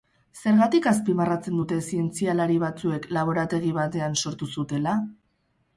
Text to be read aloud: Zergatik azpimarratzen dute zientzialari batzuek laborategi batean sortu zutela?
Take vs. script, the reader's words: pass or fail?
pass